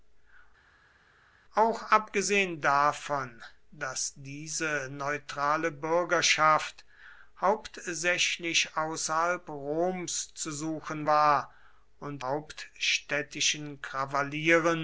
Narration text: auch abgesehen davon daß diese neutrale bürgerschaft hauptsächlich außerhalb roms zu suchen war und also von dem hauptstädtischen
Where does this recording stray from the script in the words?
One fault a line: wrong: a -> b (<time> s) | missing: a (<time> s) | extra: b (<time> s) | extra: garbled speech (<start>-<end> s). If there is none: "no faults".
missing: also von dem (12.2 s)